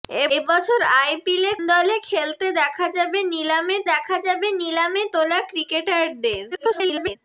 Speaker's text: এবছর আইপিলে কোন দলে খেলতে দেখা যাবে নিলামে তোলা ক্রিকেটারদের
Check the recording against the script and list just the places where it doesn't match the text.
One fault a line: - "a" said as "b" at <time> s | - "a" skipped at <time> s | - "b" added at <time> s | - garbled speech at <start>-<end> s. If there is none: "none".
- "কোন" skipped at 1.5 s
- "দেখা যাবে নিলামে" added at 3.9 s
- garbled speech at 6.5-7.2 s